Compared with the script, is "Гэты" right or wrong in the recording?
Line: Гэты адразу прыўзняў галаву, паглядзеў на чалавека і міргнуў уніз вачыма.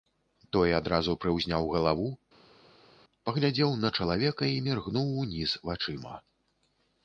wrong